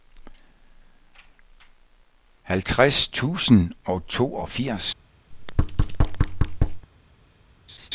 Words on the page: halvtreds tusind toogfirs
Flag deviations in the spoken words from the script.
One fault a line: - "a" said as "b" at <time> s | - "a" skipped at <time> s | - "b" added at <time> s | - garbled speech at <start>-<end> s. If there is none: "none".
- "og" added at 3.9 s